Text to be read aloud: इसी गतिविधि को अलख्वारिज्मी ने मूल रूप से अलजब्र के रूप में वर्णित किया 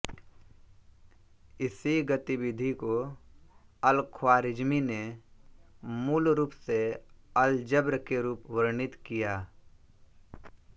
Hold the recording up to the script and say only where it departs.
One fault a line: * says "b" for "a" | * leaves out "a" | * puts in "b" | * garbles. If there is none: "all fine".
* leaves out "में"